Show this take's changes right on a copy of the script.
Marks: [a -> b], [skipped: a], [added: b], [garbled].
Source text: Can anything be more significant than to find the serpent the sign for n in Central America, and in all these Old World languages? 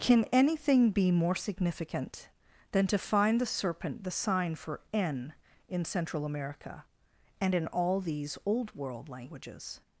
Can anything be more significant than to find the serpent the sign for n in Central America, and in all these Old World languages?